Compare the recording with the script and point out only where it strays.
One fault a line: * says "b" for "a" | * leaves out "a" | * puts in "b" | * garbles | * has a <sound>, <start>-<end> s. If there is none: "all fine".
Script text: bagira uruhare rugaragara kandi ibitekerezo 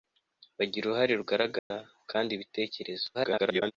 * has a dropout, 1.6-1.7 s
* garbles